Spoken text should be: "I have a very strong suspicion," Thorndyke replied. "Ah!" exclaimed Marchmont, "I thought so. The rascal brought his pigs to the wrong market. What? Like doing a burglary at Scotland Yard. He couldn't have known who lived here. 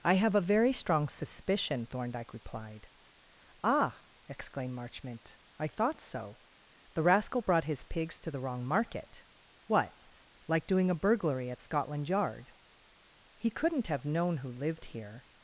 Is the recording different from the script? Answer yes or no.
no